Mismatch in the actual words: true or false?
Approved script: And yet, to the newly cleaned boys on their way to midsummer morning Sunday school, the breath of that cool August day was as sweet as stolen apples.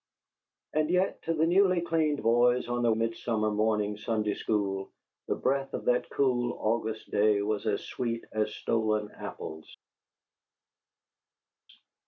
true